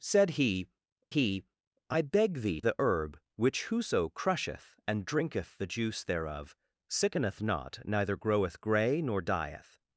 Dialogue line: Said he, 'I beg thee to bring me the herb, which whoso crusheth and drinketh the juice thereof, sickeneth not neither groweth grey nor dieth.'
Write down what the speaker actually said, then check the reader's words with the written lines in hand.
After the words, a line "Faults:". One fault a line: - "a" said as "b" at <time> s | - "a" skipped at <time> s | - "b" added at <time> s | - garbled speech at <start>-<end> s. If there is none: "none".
Said he he, 'I beg thee the herb, which whoso crusheth and drinketh the juice thereof, sickeneth not neither groweth grey nor dieth.'
Faults:
- "he" added at 1.1 s
- "to bring me" skipped at 2.6 s